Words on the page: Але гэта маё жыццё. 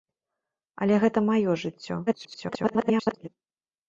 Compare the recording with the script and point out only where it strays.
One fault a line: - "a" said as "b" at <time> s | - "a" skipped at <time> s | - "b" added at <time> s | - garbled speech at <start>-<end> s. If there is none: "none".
- garbled speech at 2.1-3.3 s